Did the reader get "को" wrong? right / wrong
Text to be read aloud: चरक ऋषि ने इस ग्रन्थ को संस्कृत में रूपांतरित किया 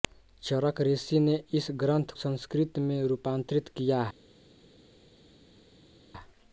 wrong